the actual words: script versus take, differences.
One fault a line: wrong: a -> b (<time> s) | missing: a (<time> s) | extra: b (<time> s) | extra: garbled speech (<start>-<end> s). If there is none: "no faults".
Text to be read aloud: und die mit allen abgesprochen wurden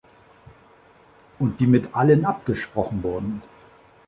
no faults